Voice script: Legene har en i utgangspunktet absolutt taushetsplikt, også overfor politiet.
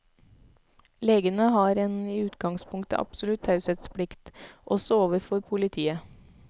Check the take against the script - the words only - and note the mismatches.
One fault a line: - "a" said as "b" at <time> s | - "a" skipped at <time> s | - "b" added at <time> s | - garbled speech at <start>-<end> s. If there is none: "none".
none